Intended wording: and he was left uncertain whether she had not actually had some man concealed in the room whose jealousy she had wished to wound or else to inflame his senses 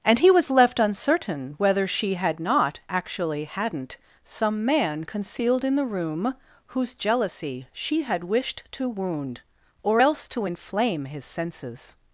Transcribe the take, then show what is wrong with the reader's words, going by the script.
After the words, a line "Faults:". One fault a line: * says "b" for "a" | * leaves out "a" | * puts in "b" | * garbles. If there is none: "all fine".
and he was left uncertain whether she had not actually hadn't some man concealed in the room whose jealousy she had wished to wound or else to inflame his senses
Faults:
* says "hadn't" for "had"